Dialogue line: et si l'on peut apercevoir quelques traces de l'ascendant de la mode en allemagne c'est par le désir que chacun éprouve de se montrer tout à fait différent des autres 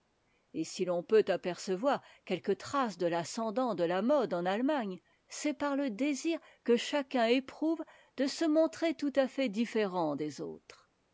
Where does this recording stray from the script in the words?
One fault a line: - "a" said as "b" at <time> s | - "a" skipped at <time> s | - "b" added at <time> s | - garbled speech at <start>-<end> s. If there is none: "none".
none